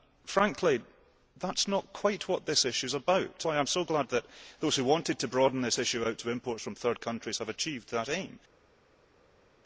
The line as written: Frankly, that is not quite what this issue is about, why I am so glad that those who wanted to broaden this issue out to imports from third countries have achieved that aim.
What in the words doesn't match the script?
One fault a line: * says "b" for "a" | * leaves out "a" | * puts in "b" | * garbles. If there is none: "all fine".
all fine